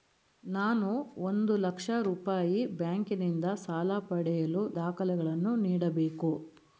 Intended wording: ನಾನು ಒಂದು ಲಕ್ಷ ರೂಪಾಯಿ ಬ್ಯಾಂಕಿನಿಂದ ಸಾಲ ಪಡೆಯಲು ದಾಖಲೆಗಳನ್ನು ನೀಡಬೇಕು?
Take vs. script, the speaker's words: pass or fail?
pass